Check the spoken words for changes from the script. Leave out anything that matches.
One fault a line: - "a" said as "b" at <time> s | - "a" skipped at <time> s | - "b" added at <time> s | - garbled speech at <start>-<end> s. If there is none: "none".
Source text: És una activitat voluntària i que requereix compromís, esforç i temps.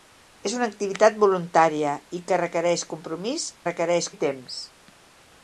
- "esforç" said as "requereix" at 3.7 s